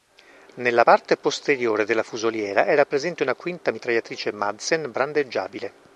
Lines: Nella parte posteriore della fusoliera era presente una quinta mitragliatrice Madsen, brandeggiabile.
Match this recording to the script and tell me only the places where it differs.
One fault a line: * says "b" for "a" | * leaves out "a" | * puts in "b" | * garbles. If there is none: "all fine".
all fine